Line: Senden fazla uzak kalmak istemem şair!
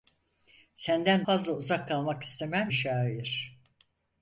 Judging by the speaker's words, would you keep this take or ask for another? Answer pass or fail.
pass